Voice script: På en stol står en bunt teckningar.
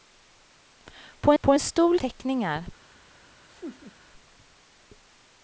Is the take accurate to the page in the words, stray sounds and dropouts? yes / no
no